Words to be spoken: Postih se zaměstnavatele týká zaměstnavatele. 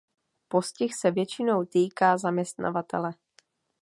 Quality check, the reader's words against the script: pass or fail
fail